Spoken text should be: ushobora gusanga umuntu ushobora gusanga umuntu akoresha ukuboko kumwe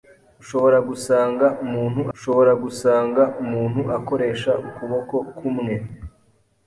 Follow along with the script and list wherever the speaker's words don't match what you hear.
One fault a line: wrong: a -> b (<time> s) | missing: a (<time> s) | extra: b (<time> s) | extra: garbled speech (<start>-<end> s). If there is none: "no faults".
no faults